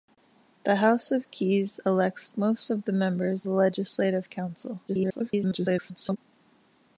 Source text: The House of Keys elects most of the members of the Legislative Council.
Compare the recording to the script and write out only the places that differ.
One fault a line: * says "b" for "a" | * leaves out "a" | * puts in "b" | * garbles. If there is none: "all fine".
* leaves out "of"
* garbles